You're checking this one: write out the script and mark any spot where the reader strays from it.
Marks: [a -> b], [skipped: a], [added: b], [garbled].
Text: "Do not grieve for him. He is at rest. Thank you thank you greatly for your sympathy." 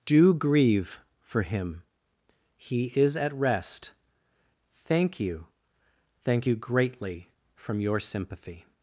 "Do [skipped: not] grieve for him. He is at rest. Thank you thank you greatly [for -> from] your sympathy."